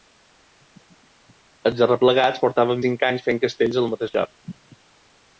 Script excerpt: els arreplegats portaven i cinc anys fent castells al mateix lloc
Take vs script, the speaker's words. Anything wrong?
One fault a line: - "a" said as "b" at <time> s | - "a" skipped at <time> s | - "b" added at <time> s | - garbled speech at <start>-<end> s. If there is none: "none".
none